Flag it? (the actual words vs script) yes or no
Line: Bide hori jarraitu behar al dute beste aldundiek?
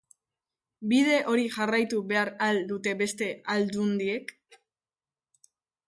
no